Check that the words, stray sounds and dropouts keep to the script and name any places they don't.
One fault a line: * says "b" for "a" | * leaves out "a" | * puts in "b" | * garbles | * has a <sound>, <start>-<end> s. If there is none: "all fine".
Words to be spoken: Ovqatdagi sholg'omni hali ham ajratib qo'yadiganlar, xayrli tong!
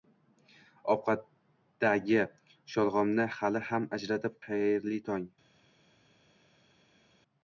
* leaves out "qo'yadiganlar"